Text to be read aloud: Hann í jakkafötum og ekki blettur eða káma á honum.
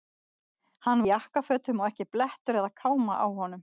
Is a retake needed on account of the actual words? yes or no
no